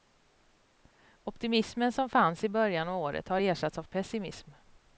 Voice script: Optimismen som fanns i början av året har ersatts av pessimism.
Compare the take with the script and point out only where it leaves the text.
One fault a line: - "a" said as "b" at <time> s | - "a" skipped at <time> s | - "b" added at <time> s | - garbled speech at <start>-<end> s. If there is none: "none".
none